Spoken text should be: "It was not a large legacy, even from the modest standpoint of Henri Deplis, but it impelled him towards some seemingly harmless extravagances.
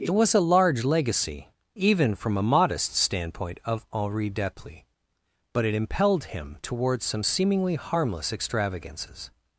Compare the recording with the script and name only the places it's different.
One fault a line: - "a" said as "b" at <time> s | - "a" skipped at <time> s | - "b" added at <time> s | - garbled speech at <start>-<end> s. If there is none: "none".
- "not" skipped at 0.3 s
- "the" said as "a" at 2.4 s